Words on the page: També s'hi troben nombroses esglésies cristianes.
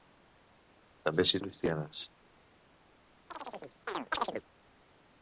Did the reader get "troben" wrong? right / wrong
wrong